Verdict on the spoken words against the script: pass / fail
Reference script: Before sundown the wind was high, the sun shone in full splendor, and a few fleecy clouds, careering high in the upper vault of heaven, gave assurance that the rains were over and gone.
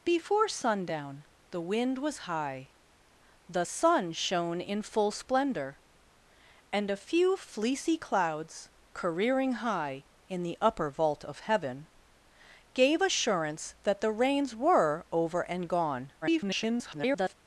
fail